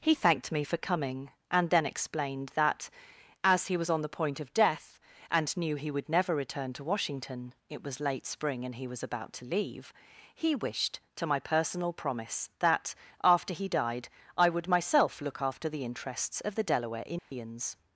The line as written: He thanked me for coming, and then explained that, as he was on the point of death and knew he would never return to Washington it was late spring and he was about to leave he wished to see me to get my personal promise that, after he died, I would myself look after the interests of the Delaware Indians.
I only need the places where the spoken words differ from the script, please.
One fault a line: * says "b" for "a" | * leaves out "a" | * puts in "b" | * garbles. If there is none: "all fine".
* leaves out "see me to get"